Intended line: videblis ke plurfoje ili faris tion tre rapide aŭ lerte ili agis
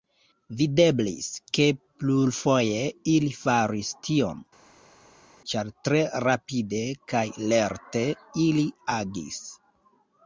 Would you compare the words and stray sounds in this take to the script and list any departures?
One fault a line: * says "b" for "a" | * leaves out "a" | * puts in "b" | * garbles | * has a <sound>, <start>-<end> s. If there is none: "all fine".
* puts in "ĉar"
* says "kaj" for "aŭ"